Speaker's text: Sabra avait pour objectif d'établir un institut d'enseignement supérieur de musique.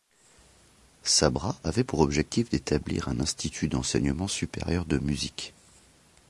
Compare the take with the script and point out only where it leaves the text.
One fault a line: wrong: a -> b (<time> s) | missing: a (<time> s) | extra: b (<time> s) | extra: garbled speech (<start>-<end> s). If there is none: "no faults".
no faults